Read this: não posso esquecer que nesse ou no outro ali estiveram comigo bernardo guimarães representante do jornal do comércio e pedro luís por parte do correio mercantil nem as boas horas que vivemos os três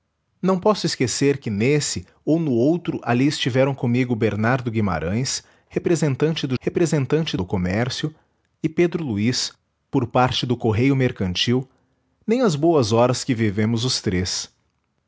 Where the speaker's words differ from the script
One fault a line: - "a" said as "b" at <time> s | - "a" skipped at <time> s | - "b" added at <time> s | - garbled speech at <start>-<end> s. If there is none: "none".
- "jornal" said as "representante" at 6.6 s